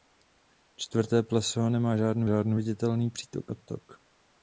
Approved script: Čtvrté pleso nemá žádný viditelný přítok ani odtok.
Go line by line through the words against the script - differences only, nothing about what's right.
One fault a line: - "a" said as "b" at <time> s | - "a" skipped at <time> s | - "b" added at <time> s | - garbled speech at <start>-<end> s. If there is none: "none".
- "žádný" added at 2.3 s
- "ani" skipped at 3.5 s